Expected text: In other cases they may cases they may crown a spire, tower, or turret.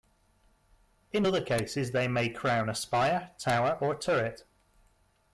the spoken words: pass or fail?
fail